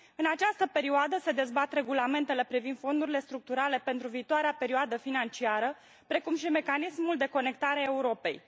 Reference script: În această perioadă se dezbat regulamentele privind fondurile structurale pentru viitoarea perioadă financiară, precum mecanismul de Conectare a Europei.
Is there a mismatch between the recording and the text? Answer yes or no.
yes